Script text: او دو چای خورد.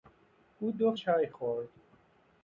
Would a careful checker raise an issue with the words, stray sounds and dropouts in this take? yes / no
no